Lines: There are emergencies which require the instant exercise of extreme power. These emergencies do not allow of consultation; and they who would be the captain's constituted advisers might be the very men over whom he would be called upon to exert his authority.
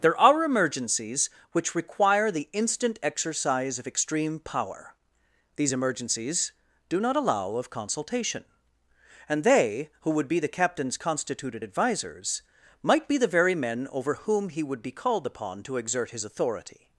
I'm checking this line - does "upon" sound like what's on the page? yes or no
yes